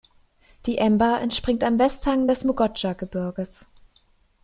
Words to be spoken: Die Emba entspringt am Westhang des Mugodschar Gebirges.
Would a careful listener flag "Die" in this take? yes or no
no